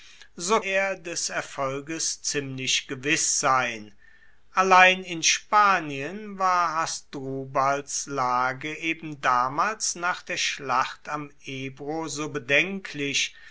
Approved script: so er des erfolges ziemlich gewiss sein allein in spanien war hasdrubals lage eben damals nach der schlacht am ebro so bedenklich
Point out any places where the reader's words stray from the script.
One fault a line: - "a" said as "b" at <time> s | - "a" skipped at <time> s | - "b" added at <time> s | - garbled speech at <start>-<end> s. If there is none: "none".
none